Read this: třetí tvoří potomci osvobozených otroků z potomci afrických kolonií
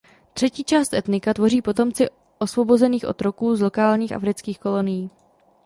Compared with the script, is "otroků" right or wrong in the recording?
right